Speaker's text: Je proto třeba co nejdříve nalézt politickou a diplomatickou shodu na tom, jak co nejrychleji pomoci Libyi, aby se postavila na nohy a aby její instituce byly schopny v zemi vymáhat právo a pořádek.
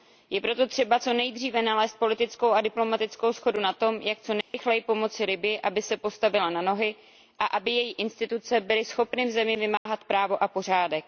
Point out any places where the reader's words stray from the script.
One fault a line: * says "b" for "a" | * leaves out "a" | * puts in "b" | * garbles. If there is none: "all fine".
all fine